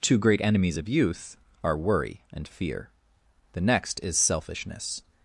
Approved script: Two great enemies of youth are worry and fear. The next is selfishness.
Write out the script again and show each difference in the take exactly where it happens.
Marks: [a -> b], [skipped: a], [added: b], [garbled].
Two great enemies of youth are worry and fear. The next is selfishness.